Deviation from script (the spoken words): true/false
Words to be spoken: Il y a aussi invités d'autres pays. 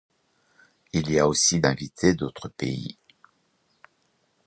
false